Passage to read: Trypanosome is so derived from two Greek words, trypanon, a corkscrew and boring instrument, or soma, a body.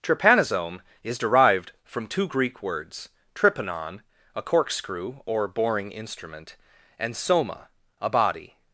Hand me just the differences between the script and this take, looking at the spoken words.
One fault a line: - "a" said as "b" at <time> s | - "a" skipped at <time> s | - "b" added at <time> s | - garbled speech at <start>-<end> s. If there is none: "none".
- "so" skipped at 1.2 s
- "and" said as "or" at 5.3 s
- "or" said as "and" at 7.0 s